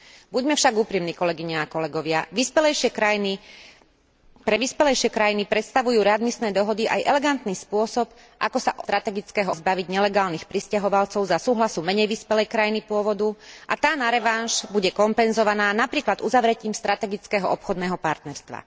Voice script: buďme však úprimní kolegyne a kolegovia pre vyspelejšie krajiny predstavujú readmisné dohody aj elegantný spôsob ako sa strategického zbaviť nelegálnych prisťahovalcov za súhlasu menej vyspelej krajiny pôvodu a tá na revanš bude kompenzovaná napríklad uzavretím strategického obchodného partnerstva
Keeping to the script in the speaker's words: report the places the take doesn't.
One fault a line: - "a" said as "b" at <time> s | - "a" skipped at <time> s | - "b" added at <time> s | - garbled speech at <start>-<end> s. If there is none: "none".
none